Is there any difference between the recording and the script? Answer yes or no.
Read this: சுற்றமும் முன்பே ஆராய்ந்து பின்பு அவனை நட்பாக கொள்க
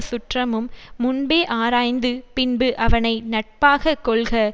no